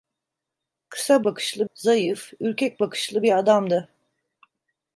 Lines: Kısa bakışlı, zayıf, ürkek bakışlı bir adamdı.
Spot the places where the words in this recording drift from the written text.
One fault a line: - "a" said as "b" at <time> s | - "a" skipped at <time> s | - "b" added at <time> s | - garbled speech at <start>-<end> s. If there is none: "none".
none